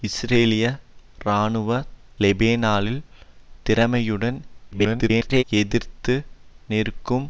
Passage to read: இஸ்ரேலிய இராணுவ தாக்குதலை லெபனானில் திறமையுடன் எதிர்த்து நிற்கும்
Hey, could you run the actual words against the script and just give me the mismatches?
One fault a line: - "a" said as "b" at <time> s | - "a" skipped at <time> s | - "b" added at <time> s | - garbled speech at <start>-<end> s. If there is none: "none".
- "தாக்குதலை" skipped at 1.7 s
- garbled speech at 4.7-5.4 s